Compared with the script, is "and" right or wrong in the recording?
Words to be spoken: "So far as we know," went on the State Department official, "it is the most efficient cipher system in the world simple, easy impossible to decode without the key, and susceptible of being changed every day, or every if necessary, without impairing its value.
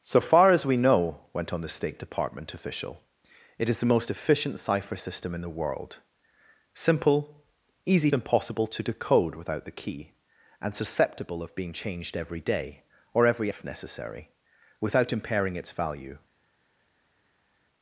right